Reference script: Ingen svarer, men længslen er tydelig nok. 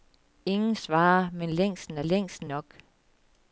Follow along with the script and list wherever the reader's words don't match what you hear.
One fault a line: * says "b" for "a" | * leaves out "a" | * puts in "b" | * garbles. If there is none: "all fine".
* says "længslen" for "tydelig"